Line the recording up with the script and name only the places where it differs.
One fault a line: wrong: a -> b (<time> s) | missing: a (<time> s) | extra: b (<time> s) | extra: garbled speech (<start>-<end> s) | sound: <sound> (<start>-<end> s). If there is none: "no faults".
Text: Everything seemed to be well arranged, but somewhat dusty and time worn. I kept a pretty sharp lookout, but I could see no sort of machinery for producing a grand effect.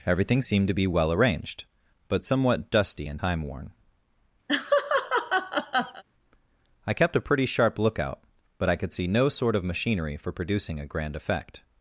sound: laugh (4.5-6.0 s)